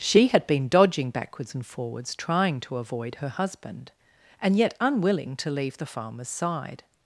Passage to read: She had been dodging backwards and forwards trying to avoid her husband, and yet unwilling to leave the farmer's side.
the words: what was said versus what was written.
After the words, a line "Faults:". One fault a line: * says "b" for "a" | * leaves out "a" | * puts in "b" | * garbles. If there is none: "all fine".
She had been dodging backwards and forwards trying to avoid her husband, and yet unwilling to leave the farmer's side.
Faults:
all fine